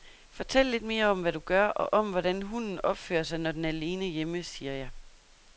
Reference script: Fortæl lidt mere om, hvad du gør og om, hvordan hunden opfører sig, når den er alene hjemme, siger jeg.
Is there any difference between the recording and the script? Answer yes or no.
no